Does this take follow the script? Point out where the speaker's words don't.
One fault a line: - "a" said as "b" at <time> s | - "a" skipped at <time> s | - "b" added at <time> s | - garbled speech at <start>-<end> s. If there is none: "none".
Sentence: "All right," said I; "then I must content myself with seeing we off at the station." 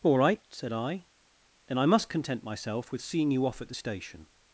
- "we" said as "you" at 3.3 s